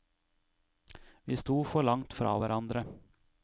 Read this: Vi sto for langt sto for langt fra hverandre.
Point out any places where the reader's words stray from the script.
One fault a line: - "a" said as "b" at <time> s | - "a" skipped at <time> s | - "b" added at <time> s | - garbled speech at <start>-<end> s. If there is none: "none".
- "sto for langt" skipped at 2.1 s